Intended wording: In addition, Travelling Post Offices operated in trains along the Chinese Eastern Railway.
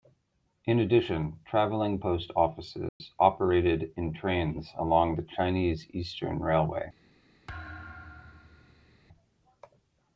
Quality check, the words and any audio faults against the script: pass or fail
fail